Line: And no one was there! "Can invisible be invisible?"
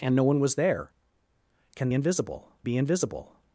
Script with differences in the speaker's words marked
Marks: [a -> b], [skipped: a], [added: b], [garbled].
And no one was there! "Can invisible be invisible?"